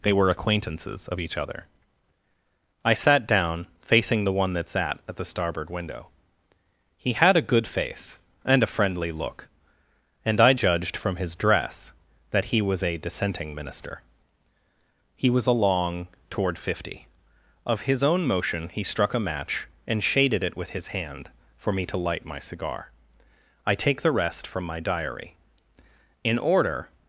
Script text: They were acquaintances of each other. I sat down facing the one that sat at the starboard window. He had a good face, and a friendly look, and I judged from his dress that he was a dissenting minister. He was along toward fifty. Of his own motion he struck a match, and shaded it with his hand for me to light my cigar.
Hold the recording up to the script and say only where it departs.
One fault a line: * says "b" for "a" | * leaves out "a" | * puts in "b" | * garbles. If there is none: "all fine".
* puts in "I take the rest from my diary In order"